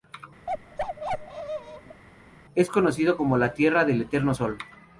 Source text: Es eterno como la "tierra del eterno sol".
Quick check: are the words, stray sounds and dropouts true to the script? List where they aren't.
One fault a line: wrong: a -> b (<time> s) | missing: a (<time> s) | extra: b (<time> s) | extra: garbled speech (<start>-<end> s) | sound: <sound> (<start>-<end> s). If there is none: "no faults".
sound: bark (0.5-2.0 s)
wrong: eterno -> conocido (2.7 s)